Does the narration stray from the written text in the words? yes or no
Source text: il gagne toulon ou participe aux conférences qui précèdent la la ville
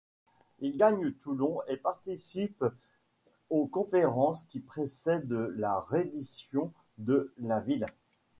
yes